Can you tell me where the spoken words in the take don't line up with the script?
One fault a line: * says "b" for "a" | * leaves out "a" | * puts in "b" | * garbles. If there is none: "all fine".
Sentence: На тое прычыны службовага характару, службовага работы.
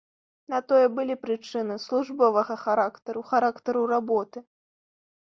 * puts in "былі"
* says "характару" for "службовага"